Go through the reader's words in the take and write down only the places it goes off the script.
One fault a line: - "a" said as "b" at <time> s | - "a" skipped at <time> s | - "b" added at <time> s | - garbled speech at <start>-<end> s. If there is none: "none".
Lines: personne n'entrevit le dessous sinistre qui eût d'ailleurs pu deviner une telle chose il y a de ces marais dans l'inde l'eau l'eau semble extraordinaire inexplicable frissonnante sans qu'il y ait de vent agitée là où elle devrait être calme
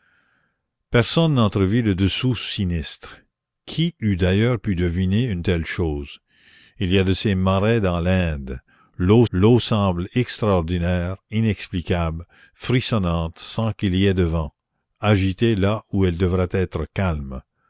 none